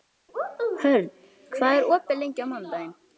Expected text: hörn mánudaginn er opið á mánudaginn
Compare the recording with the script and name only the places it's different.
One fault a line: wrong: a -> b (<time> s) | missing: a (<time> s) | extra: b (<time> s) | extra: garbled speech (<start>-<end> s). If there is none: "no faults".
wrong: mánudaginn -> hvað (1.6 s)
extra: lengi (2.2 s)